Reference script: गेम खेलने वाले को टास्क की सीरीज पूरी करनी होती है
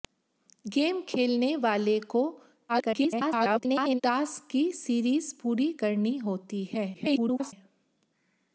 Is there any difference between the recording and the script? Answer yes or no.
yes